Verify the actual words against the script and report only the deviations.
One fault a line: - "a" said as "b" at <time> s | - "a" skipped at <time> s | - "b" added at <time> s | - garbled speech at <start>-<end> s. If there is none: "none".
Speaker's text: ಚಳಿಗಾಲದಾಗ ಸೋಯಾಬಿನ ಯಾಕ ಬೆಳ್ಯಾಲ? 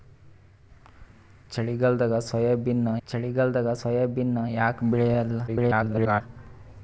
- "ಚಳಿಗಾಲದಾಗ ಸೋಯಾಬಿನ" added at 3.1 s
- garbled speech at 5.5-6.2 s